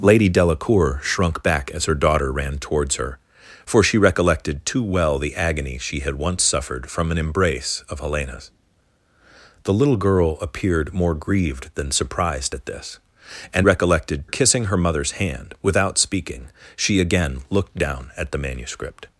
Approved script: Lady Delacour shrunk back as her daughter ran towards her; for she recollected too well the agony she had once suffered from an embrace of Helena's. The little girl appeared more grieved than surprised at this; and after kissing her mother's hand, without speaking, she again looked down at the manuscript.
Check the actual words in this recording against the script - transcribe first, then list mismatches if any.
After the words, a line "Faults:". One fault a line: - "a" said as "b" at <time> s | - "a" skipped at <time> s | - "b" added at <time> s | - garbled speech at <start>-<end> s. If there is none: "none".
Lady Delacour shrunk back as her daughter ran towards her; for she recollected too well the agony she had once suffered from an embrace of Helena's. The little girl appeared more grieved than surprised at this; and recollected kissing her mother's hand, without speaking, she again looked down at the manuscript.
Faults:
- "after" said as "recollected" at 13.6 s